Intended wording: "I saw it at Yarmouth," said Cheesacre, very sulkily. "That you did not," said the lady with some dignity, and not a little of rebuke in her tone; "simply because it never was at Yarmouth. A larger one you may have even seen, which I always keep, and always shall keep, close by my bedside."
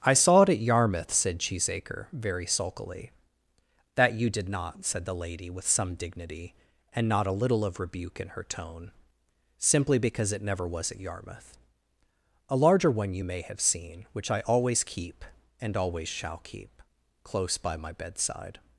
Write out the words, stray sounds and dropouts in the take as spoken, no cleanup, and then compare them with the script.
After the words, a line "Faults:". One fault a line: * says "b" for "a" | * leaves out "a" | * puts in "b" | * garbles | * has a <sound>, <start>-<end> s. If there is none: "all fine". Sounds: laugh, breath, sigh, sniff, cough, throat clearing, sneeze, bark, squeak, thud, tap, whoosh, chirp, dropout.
"I saw it at Yarmouth," said Cheesacre, very sulkily. "That you did not," said the lady with some dignity, and not a little of rebuke in her tone; "simply because it never was at Yarmouth. A larger one you may have seen, which I always keep, and always shall keep, close by my bedside."
Faults:
* leaves out "even"